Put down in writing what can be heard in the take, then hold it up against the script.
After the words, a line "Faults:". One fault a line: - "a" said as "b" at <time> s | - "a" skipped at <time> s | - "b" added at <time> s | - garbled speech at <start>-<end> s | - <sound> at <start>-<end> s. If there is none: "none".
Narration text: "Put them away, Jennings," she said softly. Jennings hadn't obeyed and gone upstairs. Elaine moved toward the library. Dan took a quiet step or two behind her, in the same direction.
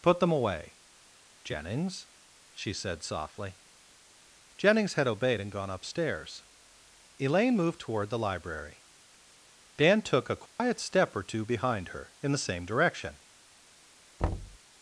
"Put them away, Jennings," she said softly. Jennings had obeyed and gone upstairs. Elaine moved toward the library. Dan took a quiet step or two behind her, in the same direction.
Faults:
- "hadn't" said as "had" at 4.9 s
- dropout at 10.5-10.6 s
- thud at 14.2-14.6 s